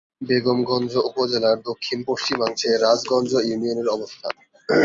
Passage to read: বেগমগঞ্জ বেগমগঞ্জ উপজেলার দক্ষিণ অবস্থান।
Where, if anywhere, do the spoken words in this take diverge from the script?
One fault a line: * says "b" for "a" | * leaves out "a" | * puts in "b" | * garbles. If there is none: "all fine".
* leaves out "বেগমগঞ্জ"
* puts in "পশ্চিমাংশে রাজগঞ্জ ইউনিয়নের"